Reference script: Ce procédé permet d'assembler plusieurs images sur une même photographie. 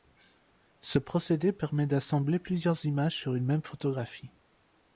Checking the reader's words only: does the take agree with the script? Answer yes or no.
yes